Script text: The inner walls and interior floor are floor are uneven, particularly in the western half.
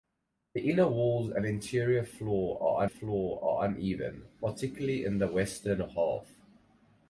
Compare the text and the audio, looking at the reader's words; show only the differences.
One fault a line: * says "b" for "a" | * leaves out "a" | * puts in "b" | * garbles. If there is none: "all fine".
all fine